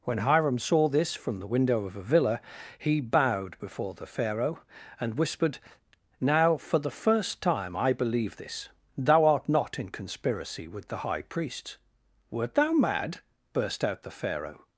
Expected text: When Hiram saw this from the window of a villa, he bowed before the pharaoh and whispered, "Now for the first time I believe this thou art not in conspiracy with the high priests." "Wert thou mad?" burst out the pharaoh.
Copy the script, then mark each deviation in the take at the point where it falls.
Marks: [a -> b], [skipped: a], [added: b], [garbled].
When Hiram saw this from the window of a villa, he bowed before the pharaoh and whispered, "Now for the first time I believe this thou art not in conspiracy with the high priests." "Wert thou mad?" burst out the pharaoh.